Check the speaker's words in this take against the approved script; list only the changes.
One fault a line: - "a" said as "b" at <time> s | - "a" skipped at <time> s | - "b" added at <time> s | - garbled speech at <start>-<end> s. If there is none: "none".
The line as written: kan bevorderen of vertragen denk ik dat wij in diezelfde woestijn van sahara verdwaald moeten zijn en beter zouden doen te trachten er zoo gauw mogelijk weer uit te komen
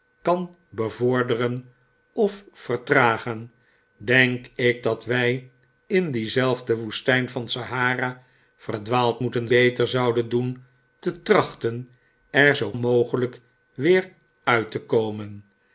- "zijn en" skipped at 9.5 s
- "gauw" skipped at 12.7 s